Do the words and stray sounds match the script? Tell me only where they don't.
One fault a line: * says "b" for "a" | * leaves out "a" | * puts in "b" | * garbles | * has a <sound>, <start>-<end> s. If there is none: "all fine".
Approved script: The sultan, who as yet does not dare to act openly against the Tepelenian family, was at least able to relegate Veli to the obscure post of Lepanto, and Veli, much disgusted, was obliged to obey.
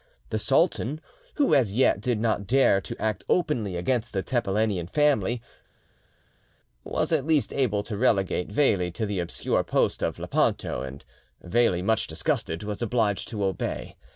* says "did" for "does"